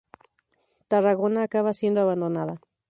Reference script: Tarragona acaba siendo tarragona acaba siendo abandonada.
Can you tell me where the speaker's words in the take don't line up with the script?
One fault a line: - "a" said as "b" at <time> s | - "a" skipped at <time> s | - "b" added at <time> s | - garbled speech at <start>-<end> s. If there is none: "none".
- "tarragona acaba siendo" skipped at 2.0 s